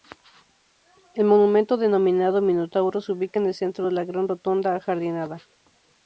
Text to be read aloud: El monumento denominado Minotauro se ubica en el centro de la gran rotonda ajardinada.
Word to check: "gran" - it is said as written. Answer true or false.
true